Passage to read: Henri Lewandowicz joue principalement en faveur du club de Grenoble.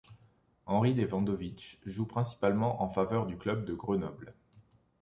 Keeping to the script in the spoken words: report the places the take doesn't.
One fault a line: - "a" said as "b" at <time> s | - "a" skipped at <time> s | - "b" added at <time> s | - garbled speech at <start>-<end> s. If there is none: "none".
none